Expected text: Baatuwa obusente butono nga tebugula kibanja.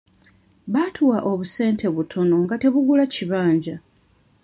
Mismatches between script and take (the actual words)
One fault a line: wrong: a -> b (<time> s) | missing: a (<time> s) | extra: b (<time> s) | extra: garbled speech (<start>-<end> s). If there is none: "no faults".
no faults